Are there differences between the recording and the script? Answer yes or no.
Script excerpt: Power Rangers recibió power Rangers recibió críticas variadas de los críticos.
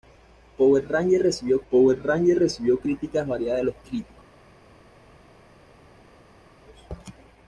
no